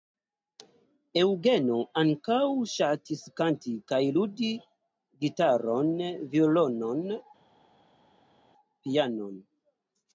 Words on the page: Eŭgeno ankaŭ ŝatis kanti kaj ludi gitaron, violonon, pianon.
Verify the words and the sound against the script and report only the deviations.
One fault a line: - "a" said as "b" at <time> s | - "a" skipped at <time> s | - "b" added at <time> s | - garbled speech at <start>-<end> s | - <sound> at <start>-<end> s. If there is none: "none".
none